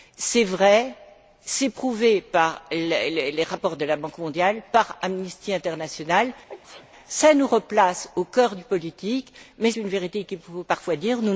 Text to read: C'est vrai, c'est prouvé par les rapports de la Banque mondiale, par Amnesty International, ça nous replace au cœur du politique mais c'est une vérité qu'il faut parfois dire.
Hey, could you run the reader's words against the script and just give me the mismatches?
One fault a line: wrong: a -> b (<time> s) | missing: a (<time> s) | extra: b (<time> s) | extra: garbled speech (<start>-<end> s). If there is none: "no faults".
missing: c'est (9.7 s)